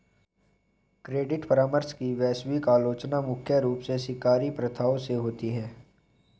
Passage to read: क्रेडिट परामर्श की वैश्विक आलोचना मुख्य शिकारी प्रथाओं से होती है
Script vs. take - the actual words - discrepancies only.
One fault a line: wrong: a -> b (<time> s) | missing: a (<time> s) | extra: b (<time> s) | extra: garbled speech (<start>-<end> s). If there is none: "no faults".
extra: रूप से (3.6 s)